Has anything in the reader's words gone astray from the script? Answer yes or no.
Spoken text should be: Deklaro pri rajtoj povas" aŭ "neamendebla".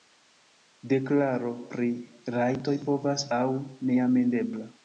no